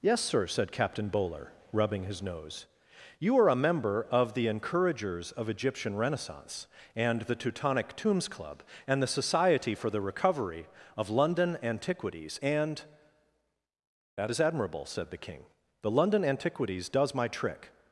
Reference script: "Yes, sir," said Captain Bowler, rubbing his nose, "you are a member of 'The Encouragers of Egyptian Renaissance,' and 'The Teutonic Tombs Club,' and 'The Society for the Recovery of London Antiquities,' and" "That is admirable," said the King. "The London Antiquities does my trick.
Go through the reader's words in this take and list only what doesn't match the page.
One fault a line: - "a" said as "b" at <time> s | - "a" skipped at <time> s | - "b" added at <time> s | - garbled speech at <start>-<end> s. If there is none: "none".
none